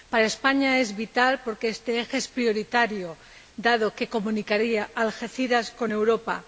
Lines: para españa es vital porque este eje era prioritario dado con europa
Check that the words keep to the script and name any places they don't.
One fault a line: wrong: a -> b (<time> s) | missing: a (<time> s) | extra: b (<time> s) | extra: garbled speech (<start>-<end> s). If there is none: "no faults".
wrong: era -> es (2.2 s)
extra: que comunicaría algeciras (4.0 s)